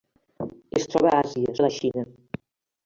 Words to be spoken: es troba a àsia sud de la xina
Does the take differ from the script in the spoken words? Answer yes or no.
yes